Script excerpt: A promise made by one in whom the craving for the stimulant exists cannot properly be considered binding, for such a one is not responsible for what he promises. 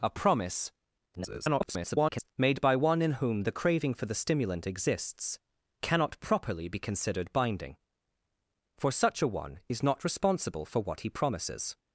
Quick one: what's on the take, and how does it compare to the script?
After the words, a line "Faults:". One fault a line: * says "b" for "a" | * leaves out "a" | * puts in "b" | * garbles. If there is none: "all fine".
A promise [garbled] made by one in whom the craving for the stimulant exists cannot properly be considered binding, for such a one is not responsible for what he promises.
Faults:
* garbles